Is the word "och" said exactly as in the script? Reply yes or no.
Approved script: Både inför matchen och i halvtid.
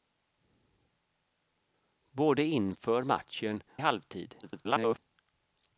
no